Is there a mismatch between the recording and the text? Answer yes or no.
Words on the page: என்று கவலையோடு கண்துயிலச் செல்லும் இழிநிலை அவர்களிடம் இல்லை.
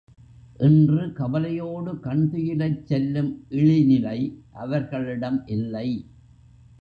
no